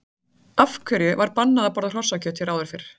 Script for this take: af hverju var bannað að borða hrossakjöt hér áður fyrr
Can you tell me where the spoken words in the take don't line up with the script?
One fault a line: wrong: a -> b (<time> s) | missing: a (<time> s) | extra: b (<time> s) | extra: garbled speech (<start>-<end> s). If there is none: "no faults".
no faults